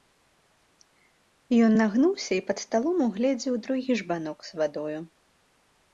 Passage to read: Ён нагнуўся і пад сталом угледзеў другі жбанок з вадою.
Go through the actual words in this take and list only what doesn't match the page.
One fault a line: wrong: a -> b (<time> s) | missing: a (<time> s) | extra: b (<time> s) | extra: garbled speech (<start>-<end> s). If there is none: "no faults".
no faults